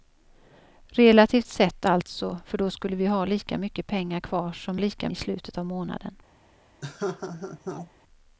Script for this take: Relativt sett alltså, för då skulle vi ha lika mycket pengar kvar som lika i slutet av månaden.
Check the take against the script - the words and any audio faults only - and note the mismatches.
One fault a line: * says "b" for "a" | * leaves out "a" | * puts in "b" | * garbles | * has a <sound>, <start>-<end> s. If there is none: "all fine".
* has a laugh, 6.8-7.9 s